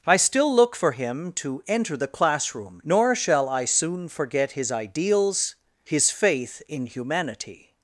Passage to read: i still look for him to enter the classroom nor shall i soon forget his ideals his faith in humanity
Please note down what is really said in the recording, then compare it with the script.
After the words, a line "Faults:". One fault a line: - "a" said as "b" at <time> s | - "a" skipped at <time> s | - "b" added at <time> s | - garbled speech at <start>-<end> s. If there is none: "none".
i still look for him to enter the classroom nor shall i soon forget his ideals his faith in humanity
Faults:
none